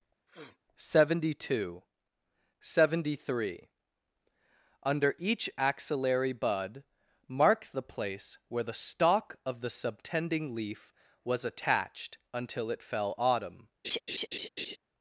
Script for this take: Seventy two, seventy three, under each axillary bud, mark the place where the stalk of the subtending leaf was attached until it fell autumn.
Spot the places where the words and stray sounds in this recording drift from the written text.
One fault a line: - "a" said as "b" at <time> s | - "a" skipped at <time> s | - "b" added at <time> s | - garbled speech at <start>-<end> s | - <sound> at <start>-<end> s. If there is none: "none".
- sniff at 0.3-0.6 s
- laugh at 13.8-14.8 s